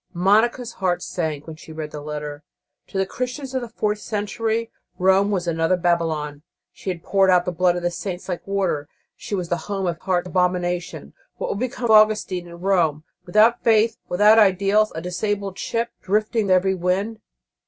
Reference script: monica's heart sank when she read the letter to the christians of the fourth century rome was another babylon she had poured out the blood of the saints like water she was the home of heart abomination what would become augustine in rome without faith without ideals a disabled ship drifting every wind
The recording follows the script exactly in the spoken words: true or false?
true